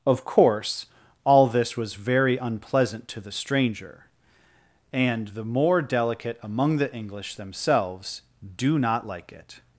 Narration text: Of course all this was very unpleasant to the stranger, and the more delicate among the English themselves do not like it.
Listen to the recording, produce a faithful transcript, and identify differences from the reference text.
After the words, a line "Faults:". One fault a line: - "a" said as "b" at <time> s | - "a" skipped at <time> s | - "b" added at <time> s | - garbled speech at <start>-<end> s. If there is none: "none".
Of course all this was very unpleasant to the stranger, and the more delicate among the English themselves do not like it.
Faults:
none